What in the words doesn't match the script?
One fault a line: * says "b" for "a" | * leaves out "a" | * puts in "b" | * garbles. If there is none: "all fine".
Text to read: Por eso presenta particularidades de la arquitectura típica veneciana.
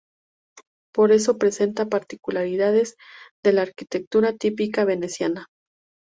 all fine